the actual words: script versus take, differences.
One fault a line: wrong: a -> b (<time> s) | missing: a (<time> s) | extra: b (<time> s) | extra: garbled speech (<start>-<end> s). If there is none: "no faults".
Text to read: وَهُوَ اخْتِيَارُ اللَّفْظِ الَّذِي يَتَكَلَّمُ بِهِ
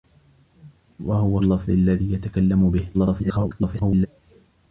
missing: اخْتِيَارُ (1.4 s)
extra: garbled speech (2.9-4.1 s)